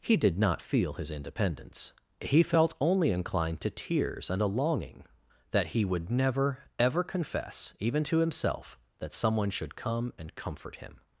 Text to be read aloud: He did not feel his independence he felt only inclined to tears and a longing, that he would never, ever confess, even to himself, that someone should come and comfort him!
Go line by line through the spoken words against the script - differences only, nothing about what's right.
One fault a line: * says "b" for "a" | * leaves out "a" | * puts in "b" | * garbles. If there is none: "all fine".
all fine